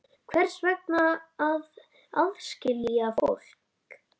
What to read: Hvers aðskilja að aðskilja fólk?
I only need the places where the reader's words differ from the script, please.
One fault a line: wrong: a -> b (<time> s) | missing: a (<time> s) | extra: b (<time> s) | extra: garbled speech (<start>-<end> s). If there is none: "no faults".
wrong: aðskilja -> vegna (0.7 s)